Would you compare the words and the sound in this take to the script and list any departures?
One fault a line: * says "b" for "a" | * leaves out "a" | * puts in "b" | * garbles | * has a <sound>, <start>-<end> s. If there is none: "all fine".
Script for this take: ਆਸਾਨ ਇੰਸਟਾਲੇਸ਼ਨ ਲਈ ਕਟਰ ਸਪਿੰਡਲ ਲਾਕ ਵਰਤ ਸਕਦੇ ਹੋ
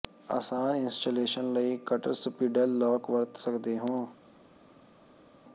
all fine